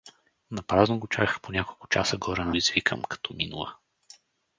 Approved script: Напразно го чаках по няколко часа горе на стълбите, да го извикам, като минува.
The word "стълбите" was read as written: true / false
false